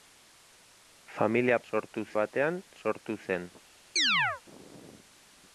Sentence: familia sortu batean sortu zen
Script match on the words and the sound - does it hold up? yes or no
no